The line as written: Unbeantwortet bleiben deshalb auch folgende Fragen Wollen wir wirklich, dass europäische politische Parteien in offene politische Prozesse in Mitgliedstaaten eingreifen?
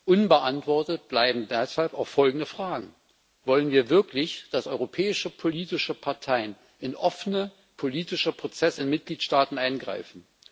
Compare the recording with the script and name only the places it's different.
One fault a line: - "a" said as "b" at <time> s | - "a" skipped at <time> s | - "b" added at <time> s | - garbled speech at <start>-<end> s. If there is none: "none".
none